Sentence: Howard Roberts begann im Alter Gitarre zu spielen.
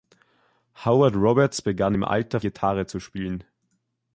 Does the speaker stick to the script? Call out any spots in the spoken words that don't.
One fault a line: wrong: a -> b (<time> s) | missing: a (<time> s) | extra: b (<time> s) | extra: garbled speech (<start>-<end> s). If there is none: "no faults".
no faults